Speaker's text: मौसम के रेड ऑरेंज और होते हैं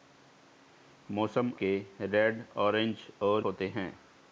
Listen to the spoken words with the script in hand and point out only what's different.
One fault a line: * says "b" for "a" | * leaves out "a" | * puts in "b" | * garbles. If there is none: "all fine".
all fine